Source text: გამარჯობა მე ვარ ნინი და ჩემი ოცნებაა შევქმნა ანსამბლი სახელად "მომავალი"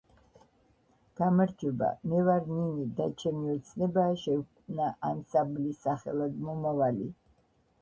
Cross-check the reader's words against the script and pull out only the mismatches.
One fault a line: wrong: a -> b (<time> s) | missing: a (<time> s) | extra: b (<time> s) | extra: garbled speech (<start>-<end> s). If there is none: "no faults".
no faults